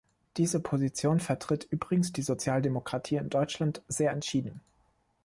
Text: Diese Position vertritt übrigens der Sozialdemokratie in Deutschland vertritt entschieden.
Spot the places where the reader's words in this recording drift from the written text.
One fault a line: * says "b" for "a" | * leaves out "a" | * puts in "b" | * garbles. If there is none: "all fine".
* says "die" for "der"
* says "sehr" for "vertritt"